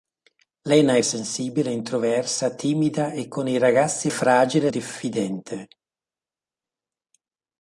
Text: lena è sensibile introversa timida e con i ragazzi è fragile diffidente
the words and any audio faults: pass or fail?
pass